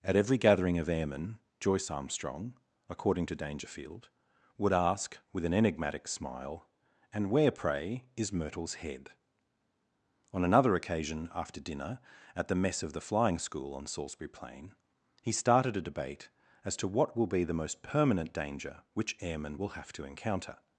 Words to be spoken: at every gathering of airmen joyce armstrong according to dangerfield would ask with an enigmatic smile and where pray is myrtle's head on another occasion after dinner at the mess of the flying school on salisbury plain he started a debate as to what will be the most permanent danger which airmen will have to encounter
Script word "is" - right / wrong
right